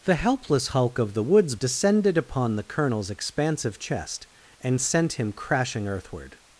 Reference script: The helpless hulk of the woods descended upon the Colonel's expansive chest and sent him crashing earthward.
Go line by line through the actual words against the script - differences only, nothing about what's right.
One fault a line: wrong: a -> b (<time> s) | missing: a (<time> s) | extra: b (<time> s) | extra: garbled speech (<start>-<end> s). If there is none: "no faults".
no faults